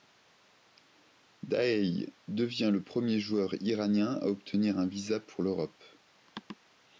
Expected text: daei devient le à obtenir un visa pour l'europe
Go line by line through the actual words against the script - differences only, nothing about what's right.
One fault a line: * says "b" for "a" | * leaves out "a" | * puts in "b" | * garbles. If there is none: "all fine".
* puts in "premier joueur iranien"